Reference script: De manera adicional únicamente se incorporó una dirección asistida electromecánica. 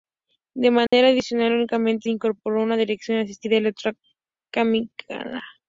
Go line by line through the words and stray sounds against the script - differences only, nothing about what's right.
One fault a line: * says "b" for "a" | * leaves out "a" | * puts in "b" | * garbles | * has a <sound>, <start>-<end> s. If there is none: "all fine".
* has a dropout, 0.9-0.9 s
* leaves out "se"